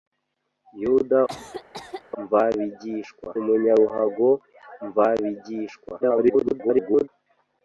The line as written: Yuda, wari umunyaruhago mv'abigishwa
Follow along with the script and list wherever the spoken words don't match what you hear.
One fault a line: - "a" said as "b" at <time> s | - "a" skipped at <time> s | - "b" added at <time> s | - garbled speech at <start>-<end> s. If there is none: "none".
- "wari" said as "mv'abigishwa" at 2.2 s
- garbled speech at 6.0-7.1 s